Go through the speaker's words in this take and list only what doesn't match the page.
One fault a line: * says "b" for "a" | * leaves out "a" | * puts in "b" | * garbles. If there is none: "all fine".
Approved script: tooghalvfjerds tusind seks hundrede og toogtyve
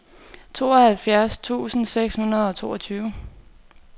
all fine